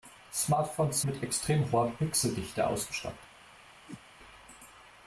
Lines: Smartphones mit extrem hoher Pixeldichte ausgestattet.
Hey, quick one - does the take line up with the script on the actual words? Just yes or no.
yes